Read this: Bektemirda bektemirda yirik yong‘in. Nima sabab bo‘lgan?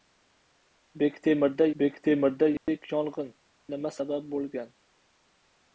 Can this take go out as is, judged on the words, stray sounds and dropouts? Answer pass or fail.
fail